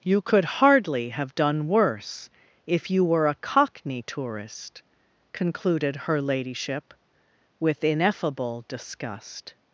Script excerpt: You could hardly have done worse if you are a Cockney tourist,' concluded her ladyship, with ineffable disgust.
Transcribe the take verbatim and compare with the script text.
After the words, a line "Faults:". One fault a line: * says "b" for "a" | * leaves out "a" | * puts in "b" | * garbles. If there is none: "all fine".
You could hardly have done worse if you were a Cockney tourist,' concluded her ladyship, with ineffable disgust.
Faults:
* says "were" for "are"